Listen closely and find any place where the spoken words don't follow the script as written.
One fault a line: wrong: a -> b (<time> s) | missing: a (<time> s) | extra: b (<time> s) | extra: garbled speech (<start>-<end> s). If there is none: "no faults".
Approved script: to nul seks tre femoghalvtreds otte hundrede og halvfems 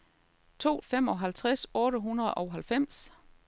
missing: nul seks tre (0.8 s)